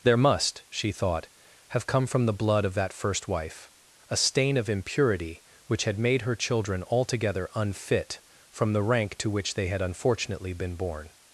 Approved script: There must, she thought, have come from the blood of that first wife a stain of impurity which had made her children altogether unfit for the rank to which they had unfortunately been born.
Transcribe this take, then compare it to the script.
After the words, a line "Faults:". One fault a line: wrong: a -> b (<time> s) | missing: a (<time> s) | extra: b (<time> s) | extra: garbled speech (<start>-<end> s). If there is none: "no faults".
There must, she thought, have come from the blood of that first wife a stain of impurity which had made her children altogether unfit from the rank to which they had unfortunately been born.
Faults:
wrong: for -> from (8.5 s)